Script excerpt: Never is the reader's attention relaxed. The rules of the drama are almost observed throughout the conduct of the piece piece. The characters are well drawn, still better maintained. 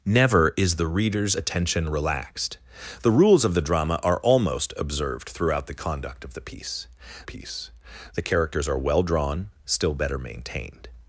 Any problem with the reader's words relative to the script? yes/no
no